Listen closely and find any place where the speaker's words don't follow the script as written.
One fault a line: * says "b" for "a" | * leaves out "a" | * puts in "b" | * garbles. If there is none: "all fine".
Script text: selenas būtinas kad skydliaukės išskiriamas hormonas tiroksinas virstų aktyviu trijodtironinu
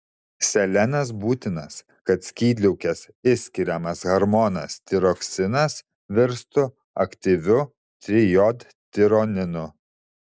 all fine